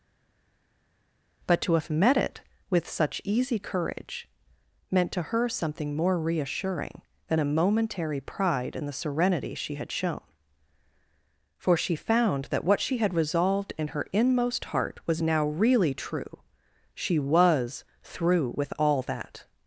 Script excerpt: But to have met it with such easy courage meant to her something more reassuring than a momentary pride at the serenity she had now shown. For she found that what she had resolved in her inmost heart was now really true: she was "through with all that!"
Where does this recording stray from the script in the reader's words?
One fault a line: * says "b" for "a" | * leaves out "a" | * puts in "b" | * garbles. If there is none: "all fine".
* says "in" for "at"
* leaves out "now"